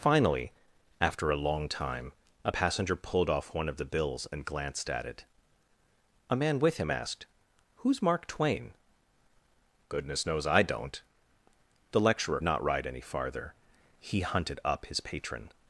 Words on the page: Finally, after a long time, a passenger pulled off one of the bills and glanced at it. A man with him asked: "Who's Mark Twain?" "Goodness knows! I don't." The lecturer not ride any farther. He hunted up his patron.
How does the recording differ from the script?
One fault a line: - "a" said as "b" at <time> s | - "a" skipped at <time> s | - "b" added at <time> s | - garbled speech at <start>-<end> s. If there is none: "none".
none